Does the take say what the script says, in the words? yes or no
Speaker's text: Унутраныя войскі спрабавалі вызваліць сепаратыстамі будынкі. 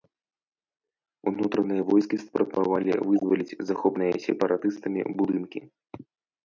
no